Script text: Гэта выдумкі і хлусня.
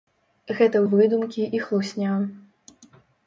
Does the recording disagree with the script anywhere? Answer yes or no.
no